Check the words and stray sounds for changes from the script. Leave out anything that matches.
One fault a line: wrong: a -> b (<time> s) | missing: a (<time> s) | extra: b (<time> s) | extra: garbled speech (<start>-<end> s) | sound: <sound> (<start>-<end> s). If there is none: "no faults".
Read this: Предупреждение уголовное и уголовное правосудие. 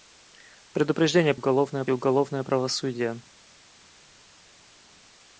no faults